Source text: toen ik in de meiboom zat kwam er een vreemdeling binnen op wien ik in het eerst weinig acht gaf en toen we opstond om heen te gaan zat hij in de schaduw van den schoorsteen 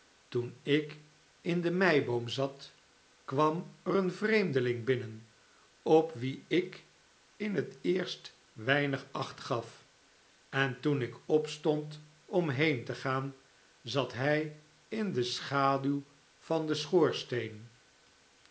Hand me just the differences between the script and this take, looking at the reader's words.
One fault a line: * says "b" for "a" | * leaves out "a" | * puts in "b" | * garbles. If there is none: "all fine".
* says "ik" for "we"